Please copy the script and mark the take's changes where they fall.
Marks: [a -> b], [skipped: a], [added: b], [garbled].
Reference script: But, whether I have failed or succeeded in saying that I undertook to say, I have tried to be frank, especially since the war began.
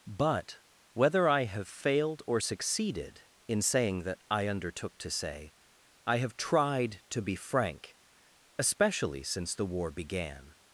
But, whether I have failed or succeeded in saying that I undertook to say, I have tried to be frank, especially since the war began.